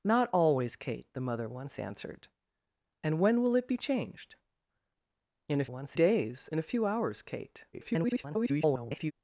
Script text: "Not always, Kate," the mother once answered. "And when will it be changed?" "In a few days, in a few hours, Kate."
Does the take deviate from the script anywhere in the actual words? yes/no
yes